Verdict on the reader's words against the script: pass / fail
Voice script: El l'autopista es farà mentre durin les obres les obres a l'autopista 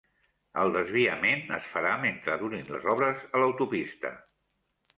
fail